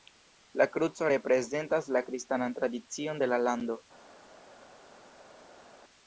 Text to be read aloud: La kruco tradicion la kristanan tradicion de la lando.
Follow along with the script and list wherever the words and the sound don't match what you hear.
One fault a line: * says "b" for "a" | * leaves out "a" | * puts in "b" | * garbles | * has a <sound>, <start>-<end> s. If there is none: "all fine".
* says "reprezentas" for "tradicion"